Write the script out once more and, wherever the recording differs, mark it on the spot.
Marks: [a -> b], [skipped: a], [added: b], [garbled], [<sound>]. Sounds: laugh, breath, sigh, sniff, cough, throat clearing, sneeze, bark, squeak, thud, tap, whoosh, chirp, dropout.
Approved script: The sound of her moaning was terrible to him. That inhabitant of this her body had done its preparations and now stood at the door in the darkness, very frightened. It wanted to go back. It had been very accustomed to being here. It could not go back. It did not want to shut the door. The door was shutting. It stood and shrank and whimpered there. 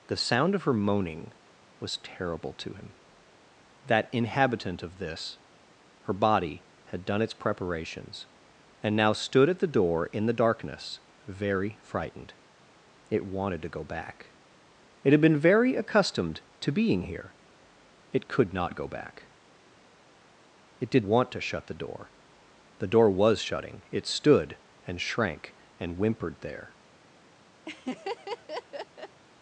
The sound of her moaning was terrible to him. That inhabitant of this her body had done its preparations and now stood at the door in the darkness, very frightened. It wanted to go back. It had been very accustomed to being here. It could not go back. It did [skipped: not] want to shut the door. The door was shutting. It stood and shrank and whimpered there. [laugh]